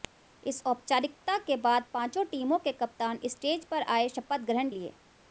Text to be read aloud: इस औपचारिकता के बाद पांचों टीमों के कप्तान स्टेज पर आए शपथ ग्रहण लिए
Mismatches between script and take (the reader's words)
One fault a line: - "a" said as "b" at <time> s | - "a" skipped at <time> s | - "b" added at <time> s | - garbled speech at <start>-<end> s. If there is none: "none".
none